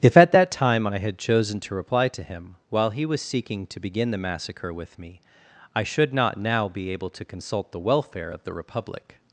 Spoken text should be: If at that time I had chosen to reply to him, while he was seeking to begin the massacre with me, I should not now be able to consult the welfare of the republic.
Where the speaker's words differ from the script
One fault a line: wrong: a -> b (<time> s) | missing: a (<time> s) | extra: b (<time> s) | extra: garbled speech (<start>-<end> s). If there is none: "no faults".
no faults